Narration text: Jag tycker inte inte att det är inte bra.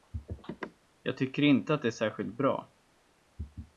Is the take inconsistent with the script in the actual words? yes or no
yes